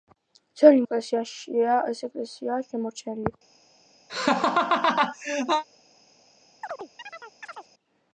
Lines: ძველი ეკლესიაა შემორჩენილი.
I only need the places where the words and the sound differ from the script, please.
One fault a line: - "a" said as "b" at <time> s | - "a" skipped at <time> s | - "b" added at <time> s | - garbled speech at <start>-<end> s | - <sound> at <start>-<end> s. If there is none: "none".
- laugh at 4.1-5.6 s
- chirp at 6.6-7.7 s